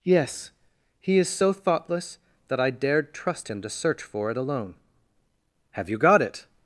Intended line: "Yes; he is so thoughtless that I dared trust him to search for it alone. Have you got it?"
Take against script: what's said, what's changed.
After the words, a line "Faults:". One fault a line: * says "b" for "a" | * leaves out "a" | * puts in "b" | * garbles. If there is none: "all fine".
"Yes; he is so thoughtless that I dared trust him to search for it alone. Have you got it?"
Faults:
all fine